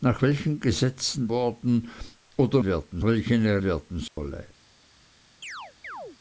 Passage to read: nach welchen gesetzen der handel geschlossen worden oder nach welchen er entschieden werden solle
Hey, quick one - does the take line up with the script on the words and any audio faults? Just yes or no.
no